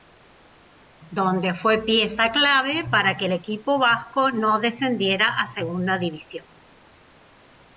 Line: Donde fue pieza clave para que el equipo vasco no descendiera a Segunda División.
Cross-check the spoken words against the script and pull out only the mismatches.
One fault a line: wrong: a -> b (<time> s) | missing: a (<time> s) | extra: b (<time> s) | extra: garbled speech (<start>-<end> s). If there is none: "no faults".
no faults